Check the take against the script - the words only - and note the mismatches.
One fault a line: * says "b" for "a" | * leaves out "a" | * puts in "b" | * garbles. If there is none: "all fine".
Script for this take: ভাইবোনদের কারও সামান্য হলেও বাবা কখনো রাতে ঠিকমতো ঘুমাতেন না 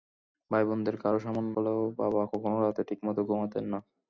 all fine